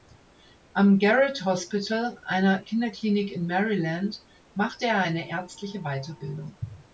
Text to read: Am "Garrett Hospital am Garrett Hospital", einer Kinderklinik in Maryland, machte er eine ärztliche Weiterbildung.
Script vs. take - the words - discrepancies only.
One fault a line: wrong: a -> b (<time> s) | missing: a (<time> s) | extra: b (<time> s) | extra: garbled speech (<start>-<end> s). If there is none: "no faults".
missing: am Garrett Hospital (2.2 s)